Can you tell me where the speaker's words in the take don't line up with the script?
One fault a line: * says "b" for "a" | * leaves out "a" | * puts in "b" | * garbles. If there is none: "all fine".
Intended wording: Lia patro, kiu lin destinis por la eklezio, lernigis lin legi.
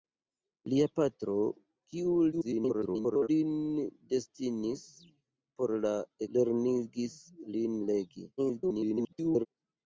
* garbles
* leaves out "eklezio"
* garbles